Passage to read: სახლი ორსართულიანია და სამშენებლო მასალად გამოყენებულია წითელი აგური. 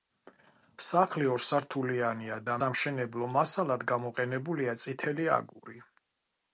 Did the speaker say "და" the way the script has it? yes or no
yes